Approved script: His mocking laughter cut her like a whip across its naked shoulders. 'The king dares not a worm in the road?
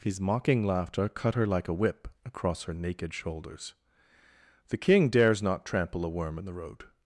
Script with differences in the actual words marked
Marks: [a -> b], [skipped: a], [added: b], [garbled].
His mocking laughter cut her like a whip across [its -> her] naked shoulders. 'The king dares not [added: trample] a worm in the road?